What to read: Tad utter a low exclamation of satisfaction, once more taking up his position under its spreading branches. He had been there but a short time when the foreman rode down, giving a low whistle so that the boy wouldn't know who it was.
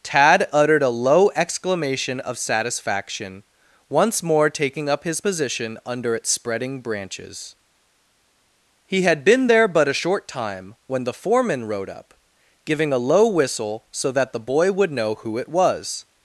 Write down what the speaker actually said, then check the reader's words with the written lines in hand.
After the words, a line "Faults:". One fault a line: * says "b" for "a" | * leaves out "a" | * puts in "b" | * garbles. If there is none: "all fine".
Tad uttered a low exclamation of satisfaction, once more taking up his position under its spreading branches. He had been there but a short time when the foreman rode up, giving a low whistle so that the boy would know who it was.
Faults:
* says "uttered" for "utter"
* says "up" for "down"
* says "would" for "wouldn't"